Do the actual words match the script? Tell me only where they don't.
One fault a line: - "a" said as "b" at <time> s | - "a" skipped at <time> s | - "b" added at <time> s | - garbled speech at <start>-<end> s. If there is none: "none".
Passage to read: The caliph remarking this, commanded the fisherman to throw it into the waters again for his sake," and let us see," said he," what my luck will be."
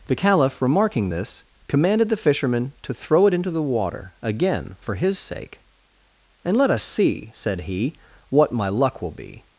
- "waters" said as "water" at 3.6 s